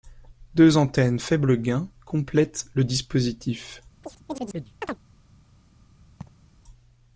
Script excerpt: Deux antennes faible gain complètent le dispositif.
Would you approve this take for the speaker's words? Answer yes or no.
yes